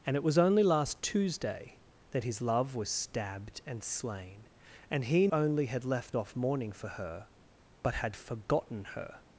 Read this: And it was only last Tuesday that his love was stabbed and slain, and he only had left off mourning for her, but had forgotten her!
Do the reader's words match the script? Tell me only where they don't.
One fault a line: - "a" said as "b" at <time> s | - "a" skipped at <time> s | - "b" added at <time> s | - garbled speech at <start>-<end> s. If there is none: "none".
none